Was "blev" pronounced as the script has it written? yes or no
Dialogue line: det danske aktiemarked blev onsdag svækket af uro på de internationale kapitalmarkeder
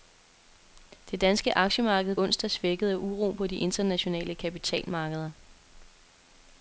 no